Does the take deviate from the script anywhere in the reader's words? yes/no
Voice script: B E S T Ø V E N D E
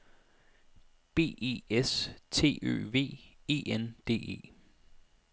no